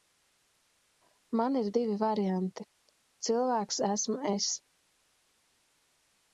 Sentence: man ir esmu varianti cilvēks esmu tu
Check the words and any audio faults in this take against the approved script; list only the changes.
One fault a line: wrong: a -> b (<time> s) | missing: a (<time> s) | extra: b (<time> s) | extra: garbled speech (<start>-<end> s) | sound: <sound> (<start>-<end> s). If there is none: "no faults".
wrong: esmu -> divi (1.8 s)
wrong: tu -> es (4.3 s)